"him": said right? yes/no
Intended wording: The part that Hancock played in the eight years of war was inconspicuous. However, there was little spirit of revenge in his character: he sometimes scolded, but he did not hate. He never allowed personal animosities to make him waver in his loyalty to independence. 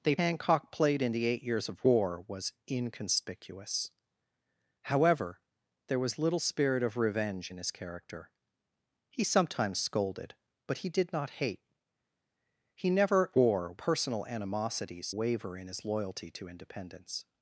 no